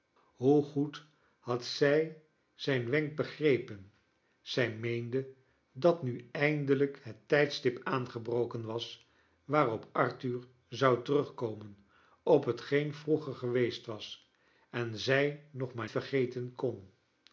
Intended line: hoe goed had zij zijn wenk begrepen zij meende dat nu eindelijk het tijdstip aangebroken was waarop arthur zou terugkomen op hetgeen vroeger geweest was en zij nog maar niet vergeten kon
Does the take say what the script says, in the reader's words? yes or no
no